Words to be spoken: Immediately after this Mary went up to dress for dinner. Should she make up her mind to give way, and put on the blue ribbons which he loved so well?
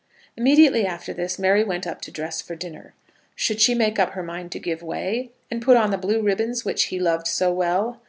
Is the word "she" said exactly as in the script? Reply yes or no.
yes